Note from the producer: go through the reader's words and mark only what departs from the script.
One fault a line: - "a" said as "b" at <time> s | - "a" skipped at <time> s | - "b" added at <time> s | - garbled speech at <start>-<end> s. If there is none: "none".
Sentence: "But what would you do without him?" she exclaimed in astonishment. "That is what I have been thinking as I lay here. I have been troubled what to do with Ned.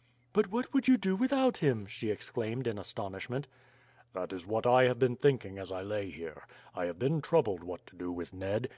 none